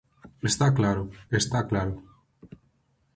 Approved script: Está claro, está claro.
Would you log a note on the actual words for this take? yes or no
no